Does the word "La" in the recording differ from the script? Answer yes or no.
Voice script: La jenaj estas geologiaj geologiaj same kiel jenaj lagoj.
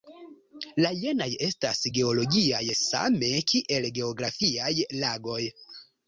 no